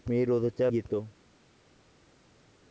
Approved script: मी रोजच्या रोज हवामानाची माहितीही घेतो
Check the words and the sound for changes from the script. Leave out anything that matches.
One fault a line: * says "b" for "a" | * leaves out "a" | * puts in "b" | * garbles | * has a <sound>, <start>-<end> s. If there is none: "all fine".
* leaves out "रोज हवामानाची माहितीही"